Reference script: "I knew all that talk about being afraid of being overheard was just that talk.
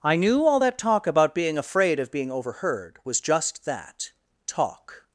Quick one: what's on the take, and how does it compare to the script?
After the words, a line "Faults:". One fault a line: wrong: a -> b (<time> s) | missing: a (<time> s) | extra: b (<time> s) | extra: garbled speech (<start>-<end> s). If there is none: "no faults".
"I knew all that talk about being afraid of being overheard was just that talk.
Faults:
no faults